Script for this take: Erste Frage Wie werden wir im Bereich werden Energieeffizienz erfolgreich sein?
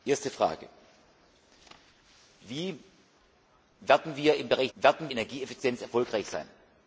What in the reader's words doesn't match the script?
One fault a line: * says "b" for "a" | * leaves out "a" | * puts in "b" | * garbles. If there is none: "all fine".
all fine